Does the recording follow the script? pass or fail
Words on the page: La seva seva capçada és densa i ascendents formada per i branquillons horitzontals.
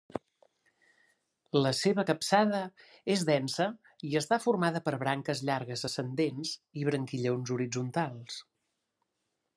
fail